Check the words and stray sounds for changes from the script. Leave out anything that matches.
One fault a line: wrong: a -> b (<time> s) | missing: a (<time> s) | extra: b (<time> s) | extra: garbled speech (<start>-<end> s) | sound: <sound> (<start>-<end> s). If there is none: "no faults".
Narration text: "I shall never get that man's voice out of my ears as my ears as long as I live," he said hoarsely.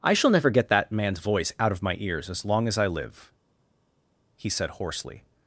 missing: my ears as (2.4 s)